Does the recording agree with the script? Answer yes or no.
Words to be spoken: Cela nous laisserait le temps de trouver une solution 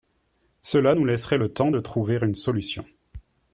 yes